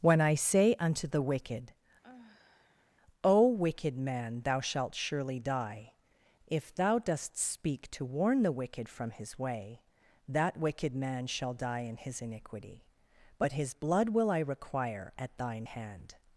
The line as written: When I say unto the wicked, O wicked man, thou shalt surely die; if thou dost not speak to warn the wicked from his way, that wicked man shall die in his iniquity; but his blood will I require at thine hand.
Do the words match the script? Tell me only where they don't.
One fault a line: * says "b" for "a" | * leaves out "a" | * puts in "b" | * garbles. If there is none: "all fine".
* leaves out "not"